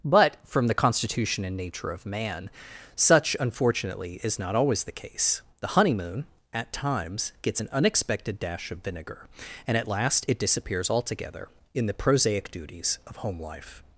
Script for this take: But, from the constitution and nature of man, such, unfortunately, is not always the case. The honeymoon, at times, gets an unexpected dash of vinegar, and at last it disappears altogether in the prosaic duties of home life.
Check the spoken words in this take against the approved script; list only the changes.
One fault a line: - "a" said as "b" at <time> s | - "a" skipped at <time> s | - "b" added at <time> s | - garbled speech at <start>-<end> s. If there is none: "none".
none